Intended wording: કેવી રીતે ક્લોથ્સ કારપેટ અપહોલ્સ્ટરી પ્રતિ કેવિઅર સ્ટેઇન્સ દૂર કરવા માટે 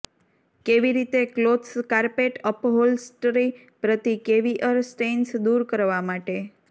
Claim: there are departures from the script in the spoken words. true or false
false